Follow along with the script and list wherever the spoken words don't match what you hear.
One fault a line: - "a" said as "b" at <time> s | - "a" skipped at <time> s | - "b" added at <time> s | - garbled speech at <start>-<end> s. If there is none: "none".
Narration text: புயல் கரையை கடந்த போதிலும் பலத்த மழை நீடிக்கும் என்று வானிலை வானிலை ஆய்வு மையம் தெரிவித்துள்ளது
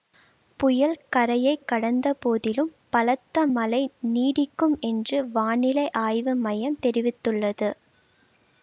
- "வானிலை" skipped at 5.9 s